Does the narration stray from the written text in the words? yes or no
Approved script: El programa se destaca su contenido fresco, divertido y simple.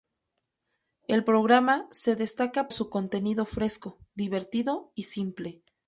no